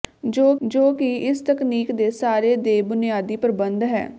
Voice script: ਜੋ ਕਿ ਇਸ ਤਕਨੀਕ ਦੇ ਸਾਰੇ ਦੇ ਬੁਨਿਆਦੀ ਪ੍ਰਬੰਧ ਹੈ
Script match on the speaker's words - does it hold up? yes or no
no